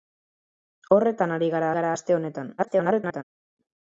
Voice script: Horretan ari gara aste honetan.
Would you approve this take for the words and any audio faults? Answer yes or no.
no